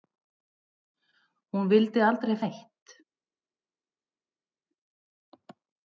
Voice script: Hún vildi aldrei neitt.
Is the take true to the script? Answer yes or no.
yes